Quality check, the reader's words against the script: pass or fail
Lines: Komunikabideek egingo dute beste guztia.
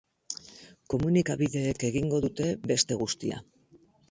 pass